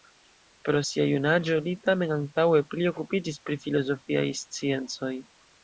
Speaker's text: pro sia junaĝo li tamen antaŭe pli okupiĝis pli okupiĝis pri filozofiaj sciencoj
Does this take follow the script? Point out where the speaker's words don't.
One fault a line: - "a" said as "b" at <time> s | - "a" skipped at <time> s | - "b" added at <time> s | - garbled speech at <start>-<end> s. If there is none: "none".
- "pli okupiĝis" skipped at 3.4 s